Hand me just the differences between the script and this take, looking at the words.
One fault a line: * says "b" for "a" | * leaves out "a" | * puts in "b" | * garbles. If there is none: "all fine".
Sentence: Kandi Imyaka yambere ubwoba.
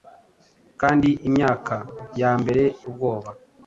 all fine